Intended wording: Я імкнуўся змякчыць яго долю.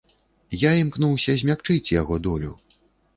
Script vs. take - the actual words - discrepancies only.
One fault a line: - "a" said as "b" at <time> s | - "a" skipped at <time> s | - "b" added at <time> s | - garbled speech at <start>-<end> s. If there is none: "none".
none